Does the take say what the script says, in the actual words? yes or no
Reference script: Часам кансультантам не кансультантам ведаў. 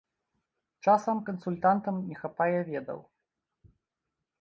no